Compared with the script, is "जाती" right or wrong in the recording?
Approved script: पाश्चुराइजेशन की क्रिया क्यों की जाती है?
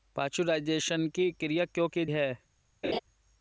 wrong